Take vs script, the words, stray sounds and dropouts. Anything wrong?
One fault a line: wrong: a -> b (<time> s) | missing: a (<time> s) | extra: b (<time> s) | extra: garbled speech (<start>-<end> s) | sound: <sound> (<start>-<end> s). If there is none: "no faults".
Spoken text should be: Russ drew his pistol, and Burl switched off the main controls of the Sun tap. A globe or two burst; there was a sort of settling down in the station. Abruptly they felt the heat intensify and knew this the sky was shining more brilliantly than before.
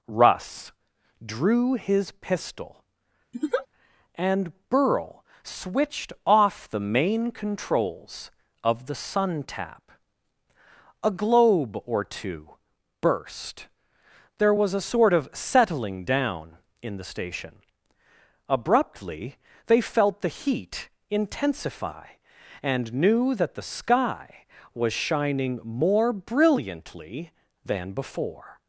sound: laugh (3.3-3.7 s)
wrong: this -> that (23.3 s)